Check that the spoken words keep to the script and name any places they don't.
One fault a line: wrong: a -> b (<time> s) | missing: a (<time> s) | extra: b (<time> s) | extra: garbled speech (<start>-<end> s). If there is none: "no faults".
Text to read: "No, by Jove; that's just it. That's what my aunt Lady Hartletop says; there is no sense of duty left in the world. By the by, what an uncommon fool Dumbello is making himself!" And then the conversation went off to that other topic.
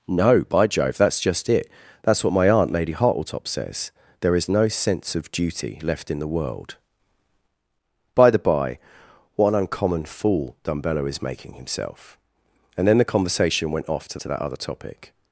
extra: to (14.2 s)